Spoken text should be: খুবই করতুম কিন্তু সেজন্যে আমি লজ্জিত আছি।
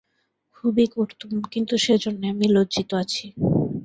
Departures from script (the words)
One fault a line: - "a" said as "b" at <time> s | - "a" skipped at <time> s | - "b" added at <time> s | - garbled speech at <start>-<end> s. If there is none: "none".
none